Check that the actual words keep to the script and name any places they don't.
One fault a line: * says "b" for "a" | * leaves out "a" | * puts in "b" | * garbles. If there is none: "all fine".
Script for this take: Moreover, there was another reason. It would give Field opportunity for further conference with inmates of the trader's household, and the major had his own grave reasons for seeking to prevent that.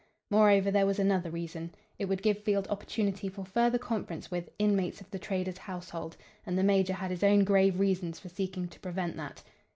all fine